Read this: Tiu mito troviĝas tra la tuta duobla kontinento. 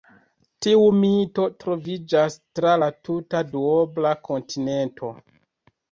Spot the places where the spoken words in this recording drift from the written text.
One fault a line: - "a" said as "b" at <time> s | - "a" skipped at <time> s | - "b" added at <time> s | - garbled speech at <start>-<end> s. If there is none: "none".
none